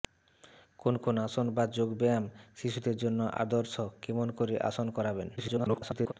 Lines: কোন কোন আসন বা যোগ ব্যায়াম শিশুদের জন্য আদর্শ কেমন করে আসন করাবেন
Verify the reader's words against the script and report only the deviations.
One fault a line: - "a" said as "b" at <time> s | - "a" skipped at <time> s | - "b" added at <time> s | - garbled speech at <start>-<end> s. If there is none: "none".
- garbled speech at 5.4-6.1 s